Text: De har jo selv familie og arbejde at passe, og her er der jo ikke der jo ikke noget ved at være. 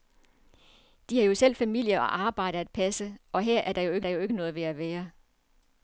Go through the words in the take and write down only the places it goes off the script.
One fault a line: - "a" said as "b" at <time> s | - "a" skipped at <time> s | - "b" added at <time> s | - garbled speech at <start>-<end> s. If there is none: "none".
none